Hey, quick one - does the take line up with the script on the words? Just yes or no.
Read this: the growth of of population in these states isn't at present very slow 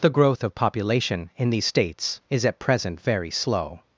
no